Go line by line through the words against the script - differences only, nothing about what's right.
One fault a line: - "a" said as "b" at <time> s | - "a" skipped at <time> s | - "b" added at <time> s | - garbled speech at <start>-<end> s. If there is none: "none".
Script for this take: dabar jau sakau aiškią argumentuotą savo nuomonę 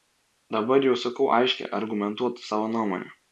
none